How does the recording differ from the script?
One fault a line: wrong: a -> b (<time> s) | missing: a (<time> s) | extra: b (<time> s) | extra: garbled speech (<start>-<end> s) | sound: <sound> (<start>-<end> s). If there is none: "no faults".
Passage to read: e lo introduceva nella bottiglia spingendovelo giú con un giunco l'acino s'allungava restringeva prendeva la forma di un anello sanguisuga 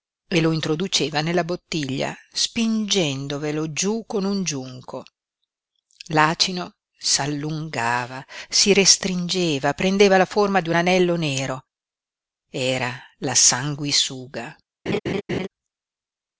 extra: si (8.5 s)
extra: nero era la (11.2 s)
sound: laugh (14.9-15.5 s)